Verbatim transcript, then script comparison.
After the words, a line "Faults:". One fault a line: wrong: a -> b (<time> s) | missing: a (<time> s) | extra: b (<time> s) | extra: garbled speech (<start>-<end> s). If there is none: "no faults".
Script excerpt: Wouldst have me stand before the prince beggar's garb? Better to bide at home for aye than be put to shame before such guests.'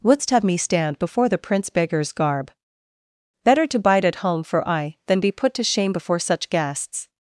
Wouldst have me stand before the prince beggar's garb? Better to bide at home for aye than be put to shame before such guests.'
Faults:
no faults